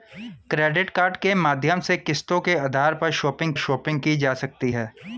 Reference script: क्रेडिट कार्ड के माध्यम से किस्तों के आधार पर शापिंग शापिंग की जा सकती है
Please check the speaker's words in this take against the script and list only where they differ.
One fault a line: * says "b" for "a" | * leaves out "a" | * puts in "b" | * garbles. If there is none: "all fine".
all fine